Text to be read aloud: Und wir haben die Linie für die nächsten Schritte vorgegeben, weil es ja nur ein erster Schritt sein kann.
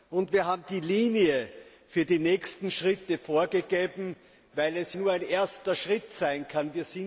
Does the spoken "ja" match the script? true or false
false